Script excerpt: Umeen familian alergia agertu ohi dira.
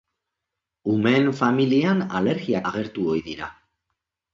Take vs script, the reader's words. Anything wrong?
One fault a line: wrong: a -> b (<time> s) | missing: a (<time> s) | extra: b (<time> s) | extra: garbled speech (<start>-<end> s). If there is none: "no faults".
no faults